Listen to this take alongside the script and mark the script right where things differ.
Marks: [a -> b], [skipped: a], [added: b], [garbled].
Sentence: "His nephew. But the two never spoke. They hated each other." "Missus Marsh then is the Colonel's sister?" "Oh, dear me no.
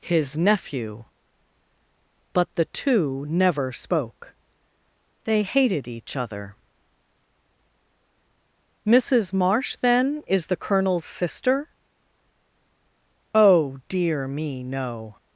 "His nephew. But the two never spoke. They hated each other." "Missus Marsh then is the Colonel's sister?" "Oh, dear me no.